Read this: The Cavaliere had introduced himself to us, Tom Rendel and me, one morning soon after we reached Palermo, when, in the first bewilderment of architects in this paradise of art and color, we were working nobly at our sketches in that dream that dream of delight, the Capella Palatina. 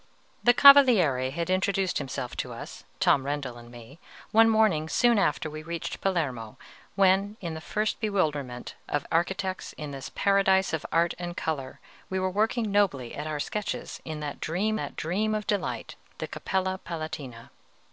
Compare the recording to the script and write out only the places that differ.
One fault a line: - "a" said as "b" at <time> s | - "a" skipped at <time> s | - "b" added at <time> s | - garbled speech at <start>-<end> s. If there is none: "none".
none